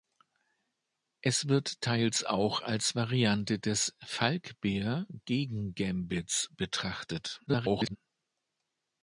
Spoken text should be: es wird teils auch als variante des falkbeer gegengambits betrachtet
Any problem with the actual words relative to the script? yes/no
yes